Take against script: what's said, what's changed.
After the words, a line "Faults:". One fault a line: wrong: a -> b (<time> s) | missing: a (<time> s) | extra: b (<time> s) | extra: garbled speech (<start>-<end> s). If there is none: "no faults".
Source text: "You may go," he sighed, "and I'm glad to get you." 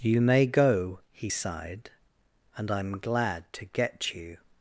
"You may go," he sighed, "and I'm glad to get you."
Faults:
no faults